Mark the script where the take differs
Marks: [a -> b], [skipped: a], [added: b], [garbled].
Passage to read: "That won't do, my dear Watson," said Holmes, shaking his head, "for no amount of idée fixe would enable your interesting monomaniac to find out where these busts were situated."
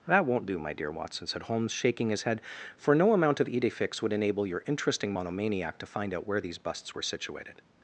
"That won't do, my dear Watson," said Holmes, shaking his head, "for no amount of idée fixe would enable your interesting monomaniac to find out where these busts were situated."